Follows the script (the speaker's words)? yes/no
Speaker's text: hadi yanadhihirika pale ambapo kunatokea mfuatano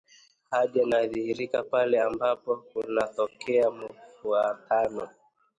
yes